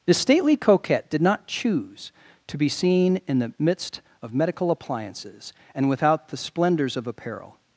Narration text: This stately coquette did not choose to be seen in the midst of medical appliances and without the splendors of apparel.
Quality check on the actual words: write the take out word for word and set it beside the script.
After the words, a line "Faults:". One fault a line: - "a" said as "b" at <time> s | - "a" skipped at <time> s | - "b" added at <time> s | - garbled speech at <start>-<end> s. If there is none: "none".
This stately coquette did not choose to be seen in the midst of medical appliances and without the splendors of apparel.
Faults:
none